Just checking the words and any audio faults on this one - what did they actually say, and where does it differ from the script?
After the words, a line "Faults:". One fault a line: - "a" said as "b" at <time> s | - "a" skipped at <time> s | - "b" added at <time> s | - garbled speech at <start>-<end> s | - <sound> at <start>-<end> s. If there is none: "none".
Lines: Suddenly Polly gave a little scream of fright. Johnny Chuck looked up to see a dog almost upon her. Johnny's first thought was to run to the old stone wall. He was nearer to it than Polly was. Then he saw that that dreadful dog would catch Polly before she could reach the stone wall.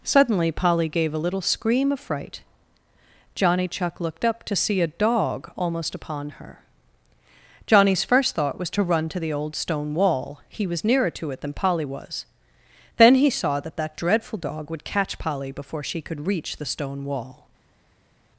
Suddenly Polly gave a little scream of fright. Johnny Chuck looked up to see a dog almost upon her. Johnny's first thought was to run to the old stone wall. He was nearer to it than Polly was. Then he saw that that dreadful dog would catch Polly before she could reach the stone wall.
Faults:
none